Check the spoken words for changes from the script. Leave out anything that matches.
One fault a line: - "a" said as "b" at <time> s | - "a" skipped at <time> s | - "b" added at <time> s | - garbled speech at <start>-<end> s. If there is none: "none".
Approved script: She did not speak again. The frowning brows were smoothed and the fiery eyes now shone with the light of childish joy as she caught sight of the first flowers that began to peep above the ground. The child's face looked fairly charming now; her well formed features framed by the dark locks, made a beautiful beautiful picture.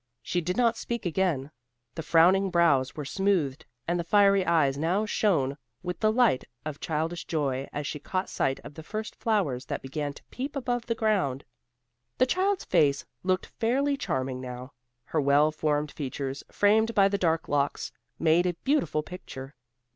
- "beautiful" skipped at 19.0 s